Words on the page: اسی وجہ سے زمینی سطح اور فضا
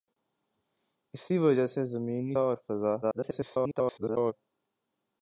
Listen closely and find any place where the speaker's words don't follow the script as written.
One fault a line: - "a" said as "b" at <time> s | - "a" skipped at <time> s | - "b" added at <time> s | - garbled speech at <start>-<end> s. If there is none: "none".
- "سطح" skipped at 2.4 s
- garbled speech at 3.0-4.3 s